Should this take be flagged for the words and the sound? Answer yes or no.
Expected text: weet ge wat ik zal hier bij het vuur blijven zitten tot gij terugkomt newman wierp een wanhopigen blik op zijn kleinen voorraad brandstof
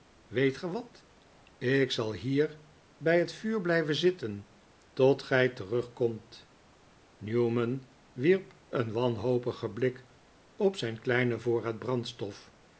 no